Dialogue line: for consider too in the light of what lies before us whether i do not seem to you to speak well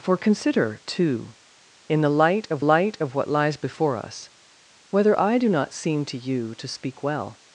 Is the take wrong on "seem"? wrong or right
right